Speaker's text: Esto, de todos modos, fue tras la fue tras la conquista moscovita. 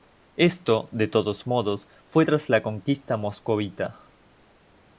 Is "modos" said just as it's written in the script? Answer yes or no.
yes